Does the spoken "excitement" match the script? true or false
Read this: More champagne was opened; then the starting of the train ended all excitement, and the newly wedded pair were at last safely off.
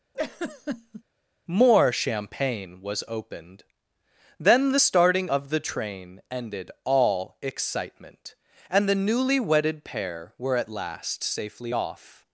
true